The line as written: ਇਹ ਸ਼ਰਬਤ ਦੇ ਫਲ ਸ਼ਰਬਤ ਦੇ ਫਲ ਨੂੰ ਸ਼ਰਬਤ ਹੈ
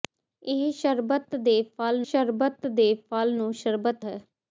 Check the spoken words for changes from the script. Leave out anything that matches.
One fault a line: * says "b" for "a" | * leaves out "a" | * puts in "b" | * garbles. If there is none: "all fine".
all fine